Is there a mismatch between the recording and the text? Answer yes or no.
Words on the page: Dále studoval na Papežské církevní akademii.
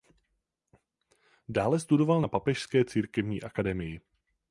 no